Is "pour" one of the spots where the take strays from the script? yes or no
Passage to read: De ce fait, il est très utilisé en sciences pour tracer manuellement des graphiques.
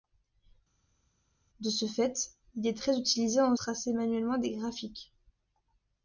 yes